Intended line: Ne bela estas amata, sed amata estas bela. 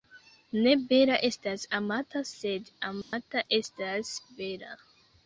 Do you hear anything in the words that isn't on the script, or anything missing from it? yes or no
no